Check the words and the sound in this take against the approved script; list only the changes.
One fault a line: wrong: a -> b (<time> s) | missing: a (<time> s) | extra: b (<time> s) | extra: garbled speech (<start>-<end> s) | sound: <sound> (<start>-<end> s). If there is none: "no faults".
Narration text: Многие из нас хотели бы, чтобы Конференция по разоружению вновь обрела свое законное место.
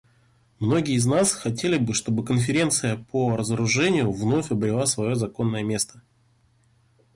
no faults